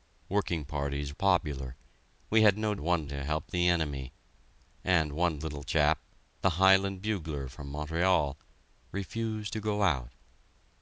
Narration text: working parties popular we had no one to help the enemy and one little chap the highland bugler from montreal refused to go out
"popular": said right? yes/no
yes